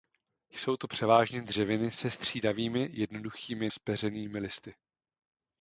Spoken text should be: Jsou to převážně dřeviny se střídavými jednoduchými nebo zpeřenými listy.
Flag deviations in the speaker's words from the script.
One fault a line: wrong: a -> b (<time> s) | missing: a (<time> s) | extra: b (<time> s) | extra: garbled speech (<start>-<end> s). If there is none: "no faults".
missing: nebo (3.7 s)